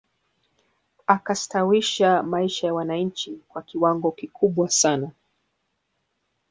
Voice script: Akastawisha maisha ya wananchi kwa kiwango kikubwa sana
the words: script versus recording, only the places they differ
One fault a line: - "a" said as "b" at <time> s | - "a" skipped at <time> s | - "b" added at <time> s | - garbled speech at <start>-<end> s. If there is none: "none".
none